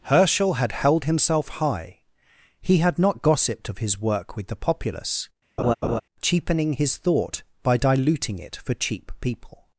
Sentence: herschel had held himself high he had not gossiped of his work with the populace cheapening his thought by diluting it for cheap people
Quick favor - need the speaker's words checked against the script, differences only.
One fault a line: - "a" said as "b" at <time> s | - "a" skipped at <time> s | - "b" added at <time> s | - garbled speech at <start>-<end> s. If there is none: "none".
none